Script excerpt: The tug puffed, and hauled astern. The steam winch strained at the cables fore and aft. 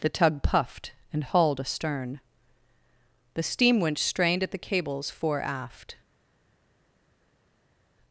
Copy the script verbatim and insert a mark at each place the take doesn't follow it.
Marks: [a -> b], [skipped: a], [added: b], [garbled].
The tug puffed, and hauled astern. The steam winch strained at the cables fore [skipped: and] aft.